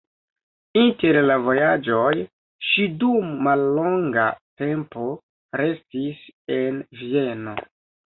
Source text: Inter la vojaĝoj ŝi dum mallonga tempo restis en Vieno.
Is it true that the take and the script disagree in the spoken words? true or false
false